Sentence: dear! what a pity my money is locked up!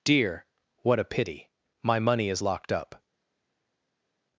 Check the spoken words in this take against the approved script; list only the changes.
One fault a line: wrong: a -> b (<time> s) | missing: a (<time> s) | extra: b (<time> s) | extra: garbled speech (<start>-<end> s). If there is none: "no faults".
no faults